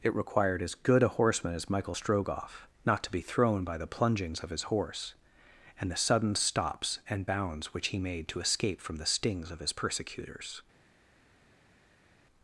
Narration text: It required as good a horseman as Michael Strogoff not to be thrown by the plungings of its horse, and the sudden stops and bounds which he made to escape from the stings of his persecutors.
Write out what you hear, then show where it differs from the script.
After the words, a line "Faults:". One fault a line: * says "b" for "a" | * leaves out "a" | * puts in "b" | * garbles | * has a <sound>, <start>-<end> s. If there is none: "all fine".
It required as good a horseman as Michael Strogoff not to be thrown by the plungings of his horse, and the sudden stops and bounds which he made to escape from the stings of his persecutors.
Faults:
* says "his" for "its"